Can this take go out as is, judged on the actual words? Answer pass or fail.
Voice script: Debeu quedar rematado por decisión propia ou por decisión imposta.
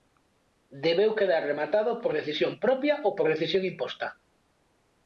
pass